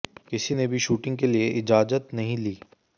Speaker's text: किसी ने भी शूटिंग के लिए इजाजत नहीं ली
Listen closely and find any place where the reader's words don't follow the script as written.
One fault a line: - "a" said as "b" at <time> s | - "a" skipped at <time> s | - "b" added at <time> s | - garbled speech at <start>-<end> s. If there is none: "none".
none